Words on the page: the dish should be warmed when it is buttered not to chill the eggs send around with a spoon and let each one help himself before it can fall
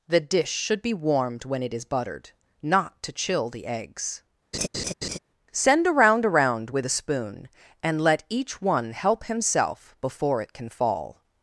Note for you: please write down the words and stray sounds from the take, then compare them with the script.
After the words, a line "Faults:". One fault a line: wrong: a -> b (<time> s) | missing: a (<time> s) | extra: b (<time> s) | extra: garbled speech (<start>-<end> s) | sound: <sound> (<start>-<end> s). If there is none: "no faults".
the dish should be warmed when it is buttered not to chill the eggs send around around with a spoon and let each one help himself before it can fall
Faults:
sound: laugh (4.5-5.2 s)
extra: around (6.3 s)